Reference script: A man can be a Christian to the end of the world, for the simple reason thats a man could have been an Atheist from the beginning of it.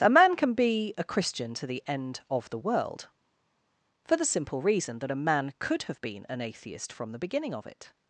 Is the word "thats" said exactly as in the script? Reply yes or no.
no